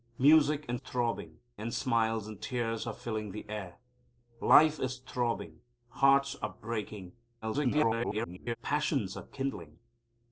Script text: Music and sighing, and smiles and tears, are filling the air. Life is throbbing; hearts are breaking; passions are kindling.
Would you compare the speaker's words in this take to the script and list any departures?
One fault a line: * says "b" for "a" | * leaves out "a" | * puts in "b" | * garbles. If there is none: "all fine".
* says "throbbing" for "sighing"
* garbles